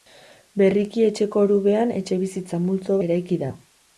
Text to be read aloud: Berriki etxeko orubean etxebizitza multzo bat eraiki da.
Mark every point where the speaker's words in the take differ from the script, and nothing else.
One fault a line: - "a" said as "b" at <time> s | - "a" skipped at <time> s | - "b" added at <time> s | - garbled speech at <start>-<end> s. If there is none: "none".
- "bat" skipped at 3.0 s